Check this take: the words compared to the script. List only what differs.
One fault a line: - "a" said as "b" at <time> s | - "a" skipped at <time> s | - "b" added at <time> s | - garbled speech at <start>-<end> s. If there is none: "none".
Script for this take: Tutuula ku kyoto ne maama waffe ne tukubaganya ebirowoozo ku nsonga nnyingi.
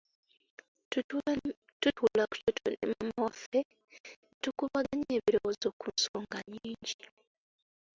none